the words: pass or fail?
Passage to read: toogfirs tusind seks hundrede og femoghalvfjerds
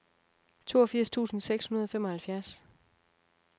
pass